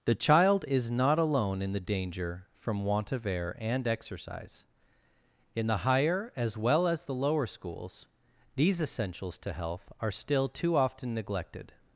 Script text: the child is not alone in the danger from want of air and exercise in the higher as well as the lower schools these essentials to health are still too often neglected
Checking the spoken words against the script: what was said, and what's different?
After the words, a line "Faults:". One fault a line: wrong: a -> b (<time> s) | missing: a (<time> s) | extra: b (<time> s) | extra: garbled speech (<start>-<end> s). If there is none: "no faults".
the child is not alone in the danger from want of air and exercise in the higher as well as the lower schools these essentials to health are still too often neglected
Faults:
no faults